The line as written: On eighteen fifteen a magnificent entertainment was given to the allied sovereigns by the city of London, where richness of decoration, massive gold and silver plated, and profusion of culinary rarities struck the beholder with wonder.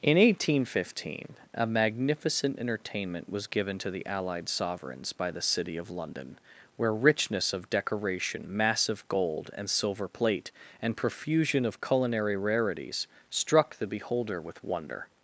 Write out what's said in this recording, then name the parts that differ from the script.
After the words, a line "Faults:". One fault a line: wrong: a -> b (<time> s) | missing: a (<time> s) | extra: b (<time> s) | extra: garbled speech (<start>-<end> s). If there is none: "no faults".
In eighteen fifteen a magnificent entertainment was given to the allied sovereigns by the city of London, where richness of decoration, massive gold and silver plate, and profusion of culinary rarities struck the beholder with wonder.
Faults:
wrong: On -> In (0.0 s)
wrong: plated -> plate (10.1 s)